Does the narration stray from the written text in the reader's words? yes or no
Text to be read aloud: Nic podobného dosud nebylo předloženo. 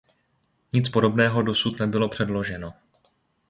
no